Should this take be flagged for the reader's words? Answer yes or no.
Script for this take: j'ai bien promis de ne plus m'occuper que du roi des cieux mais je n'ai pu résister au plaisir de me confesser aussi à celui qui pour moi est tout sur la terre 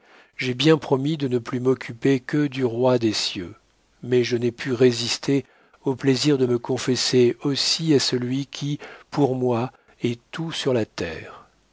no